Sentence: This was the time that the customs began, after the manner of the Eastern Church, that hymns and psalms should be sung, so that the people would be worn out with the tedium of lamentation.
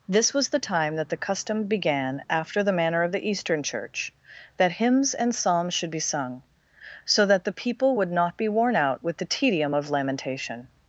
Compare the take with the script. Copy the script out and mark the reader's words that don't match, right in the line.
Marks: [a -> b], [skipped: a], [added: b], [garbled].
This was the time that the [customs -> custom] began, after the manner of the Eastern Church, that hymns and psalms should be sung, so that the people would [added: not] be worn out with the tedium of lamentation.